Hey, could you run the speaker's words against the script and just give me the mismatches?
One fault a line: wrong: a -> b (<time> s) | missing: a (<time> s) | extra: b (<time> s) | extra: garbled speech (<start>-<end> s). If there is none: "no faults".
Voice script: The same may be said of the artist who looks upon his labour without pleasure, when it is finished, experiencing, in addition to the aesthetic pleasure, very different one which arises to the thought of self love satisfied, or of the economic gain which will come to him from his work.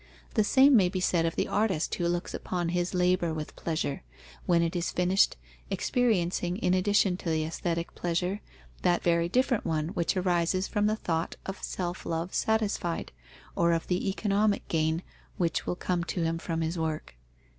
wrong: without -> with (3.4 s)
extra: that (8.8 s)
wrong: to -> from (10.7 s)